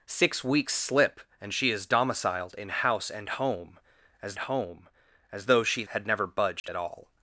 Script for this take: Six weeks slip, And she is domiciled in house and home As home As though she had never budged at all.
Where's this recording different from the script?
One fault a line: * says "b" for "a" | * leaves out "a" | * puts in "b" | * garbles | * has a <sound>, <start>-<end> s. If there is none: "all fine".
* has a dropout, 6.6-6.6 s